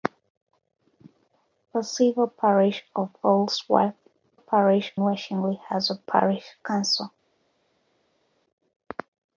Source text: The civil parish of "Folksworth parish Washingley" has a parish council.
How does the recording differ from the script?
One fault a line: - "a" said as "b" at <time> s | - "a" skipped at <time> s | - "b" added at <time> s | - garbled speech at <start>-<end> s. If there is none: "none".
none